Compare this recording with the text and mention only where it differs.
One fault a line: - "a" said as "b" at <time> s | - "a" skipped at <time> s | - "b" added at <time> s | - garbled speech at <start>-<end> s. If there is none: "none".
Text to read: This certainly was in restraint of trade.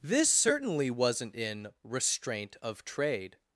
- "was" said as "wasn't" at 0.9 s